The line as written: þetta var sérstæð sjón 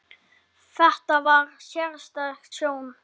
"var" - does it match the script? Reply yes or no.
yes